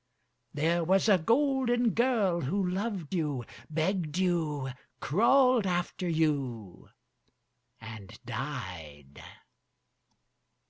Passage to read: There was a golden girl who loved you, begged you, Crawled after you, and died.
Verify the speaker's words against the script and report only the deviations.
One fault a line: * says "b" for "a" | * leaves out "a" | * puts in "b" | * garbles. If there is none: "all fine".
all fine